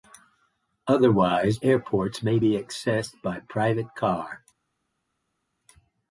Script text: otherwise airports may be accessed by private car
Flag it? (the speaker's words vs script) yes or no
no